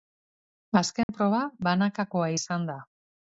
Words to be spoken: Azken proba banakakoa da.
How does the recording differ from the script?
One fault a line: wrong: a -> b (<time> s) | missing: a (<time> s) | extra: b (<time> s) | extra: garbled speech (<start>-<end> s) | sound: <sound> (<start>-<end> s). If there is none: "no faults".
sound: dropout (1.0-1.1 s)
extra: izan (2.4 s)